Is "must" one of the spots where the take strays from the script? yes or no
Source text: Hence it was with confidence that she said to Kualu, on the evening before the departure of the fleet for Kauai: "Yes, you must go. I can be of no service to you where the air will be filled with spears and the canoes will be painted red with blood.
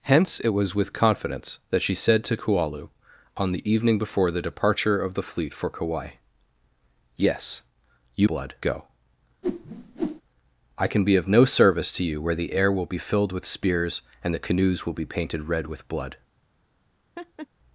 yes